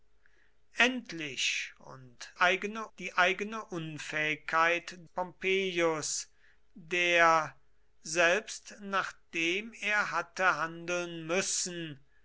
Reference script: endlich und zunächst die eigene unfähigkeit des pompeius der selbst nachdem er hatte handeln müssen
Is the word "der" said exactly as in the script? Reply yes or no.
yes